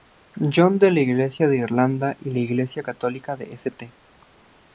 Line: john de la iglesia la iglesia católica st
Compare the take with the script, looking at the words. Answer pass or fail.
fail